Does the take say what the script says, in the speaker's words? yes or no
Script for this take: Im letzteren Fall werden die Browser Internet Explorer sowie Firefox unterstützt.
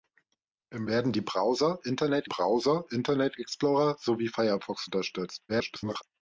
no